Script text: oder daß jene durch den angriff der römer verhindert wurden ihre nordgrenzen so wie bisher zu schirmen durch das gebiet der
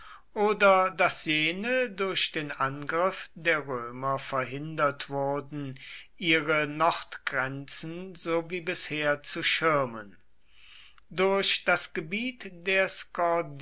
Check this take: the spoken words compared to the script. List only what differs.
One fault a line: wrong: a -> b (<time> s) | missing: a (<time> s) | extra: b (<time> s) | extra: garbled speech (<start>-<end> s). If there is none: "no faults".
no faults